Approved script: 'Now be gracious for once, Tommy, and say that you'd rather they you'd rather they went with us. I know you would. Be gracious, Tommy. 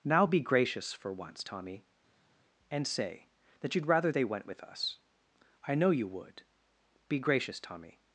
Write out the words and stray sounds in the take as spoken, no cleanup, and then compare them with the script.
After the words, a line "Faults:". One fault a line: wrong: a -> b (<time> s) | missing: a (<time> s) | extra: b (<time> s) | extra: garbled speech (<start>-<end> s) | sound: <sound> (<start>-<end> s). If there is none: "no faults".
'Now be gracious for once, Tommy, and say that you'd rather they went with us. I know you would. Be gracious, Tommy.
Faults:
missing: you'd rather they (4.2 s)